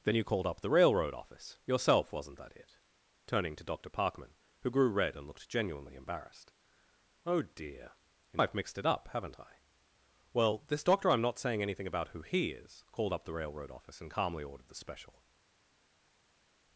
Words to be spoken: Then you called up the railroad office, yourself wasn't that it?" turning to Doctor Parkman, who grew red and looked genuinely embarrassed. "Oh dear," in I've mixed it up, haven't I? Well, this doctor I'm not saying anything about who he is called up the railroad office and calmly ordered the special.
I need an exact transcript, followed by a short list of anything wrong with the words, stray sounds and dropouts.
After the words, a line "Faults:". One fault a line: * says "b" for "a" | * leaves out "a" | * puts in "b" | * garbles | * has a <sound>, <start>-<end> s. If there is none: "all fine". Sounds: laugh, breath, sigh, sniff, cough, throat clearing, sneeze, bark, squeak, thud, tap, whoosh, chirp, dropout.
Then you called up the railroad office, yourself wasn't that it?" turning to Doctor Parkman, who grew red and looked genuinely embarrassed. "Oh dear," in I've mixed it up, haven't I? Well, this doctor I'm not saying anything about who he is called up the railroad office and calmly ordered the special.
Faults:
all fine